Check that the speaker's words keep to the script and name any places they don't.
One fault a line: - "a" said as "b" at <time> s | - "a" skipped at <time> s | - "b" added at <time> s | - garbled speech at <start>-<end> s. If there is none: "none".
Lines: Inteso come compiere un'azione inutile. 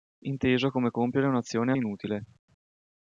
none